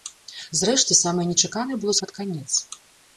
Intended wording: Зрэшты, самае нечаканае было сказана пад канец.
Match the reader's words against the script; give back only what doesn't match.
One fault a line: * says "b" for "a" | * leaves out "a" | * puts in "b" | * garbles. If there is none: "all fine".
* leaves out "сказана"